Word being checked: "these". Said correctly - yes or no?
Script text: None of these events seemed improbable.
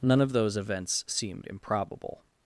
no